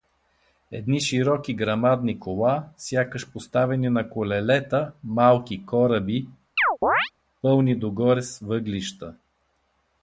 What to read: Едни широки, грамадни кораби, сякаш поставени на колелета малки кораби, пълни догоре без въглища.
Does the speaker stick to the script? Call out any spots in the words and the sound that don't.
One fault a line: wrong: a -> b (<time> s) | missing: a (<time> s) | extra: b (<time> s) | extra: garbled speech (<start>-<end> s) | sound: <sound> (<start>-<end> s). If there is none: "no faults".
wrong: кораби -> кола (2.2 s)
sound: chirp (6.6-7.1 s)
wrong: без -> с (8.2 s)